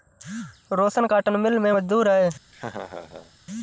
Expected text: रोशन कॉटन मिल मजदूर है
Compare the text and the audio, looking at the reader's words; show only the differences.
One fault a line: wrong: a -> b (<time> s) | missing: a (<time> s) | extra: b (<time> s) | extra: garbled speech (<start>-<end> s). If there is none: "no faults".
extra: में (1.6 s)